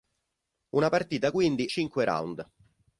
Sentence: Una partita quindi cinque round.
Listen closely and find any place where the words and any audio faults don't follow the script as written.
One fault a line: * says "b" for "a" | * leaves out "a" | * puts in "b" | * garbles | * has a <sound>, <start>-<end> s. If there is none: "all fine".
all fine